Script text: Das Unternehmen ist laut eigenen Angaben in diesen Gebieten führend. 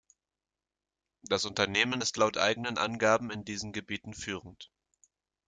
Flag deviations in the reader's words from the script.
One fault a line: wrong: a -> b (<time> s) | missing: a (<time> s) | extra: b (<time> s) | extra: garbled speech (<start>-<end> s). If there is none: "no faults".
no faults